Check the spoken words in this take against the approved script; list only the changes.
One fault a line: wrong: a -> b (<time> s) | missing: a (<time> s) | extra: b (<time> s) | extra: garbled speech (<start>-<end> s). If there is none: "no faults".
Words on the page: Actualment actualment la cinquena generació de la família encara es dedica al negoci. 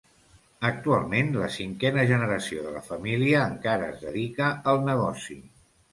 missing: actualment (1.3 s)